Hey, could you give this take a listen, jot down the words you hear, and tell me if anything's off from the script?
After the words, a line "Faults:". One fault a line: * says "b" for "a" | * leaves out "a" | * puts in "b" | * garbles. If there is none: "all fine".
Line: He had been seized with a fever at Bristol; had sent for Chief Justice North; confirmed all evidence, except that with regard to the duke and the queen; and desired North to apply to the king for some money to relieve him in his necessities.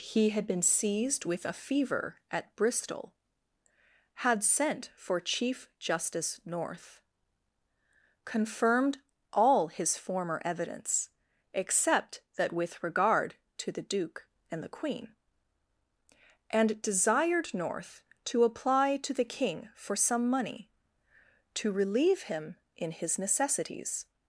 He had been seized with a fever at Bristol; had sent for Chief Justice North; confirmed all his former evidence, except that with regard to the duke and the queen; and desired North to apply to the king for some money to relieve him in his necessities.
Faults:
* puts in "his former"